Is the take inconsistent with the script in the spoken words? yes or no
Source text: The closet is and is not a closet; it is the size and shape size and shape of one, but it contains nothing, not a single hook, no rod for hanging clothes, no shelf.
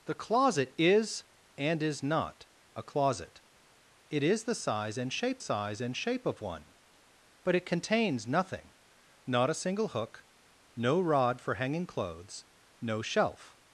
no